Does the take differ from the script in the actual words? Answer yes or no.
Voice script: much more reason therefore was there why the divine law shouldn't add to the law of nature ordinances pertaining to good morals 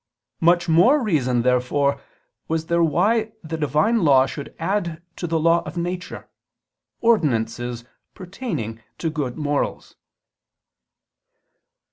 yes